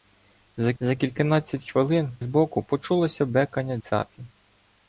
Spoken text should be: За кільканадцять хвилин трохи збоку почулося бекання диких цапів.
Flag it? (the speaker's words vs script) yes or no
yes